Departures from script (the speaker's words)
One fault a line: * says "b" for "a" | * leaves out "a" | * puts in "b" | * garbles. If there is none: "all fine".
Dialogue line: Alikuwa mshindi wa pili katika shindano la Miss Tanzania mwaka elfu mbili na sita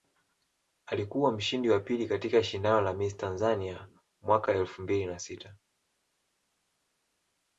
all fine